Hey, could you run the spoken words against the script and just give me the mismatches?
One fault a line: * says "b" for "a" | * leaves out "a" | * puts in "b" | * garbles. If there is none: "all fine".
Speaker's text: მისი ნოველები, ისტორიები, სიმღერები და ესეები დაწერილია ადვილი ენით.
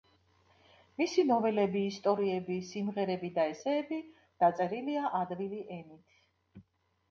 all fine